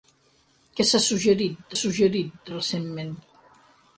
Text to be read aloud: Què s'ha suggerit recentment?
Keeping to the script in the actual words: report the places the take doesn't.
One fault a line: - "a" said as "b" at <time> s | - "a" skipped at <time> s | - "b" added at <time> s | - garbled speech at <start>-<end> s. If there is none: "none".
- "suggerit" added at 1.8 s